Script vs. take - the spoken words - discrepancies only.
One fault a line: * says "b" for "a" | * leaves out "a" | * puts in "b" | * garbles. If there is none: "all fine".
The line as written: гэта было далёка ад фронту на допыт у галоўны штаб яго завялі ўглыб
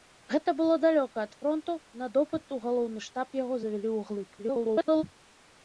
* garbles